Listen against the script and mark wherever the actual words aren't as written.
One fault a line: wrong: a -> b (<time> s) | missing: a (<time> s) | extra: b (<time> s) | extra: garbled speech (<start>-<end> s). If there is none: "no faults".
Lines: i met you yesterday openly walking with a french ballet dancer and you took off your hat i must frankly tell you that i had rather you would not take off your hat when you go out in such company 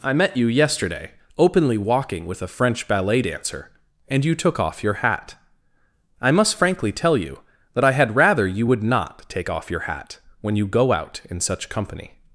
no faults